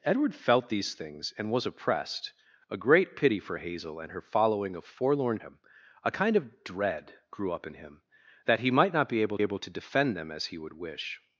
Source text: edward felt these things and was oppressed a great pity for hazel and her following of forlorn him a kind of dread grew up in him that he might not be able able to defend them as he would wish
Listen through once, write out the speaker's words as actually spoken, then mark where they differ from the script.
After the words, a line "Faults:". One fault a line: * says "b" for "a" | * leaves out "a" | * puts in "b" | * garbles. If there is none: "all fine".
edward felt these things and was oppressed a great pity for hazel and her following of forlorn him a kind of dread grew up in him that he might not be able able to defend them as he would wish
Faults:
all fine